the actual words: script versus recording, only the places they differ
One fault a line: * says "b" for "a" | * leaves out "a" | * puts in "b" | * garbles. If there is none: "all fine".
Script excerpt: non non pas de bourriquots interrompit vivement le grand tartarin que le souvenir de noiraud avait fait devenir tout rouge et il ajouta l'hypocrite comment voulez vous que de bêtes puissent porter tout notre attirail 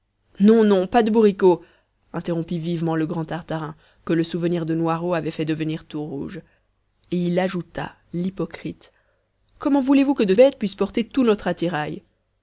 all fine